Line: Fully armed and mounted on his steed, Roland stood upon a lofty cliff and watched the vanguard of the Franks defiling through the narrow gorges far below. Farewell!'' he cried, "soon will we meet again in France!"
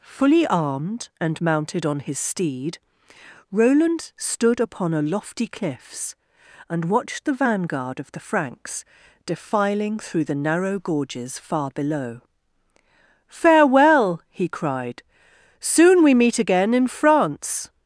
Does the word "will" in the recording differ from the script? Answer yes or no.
yes